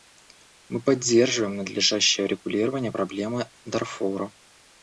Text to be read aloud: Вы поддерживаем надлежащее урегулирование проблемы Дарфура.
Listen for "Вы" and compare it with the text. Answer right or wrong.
wrong